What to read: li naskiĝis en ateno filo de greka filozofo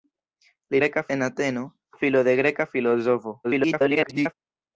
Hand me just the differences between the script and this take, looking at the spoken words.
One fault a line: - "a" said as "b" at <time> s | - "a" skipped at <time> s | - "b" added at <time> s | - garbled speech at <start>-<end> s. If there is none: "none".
- "naskiĝis" said as "greka" at 0.8 s
- garbled speech at 3.4-4.3 s